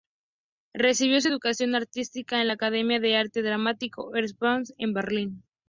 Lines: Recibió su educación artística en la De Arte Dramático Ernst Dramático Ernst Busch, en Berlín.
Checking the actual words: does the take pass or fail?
fail